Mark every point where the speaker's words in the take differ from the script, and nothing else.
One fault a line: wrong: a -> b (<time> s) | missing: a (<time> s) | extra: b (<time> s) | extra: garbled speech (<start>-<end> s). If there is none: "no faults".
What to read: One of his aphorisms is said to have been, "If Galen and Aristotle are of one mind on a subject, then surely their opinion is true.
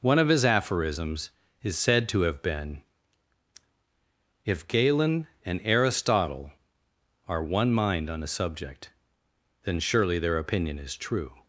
missing: of (7.4 s)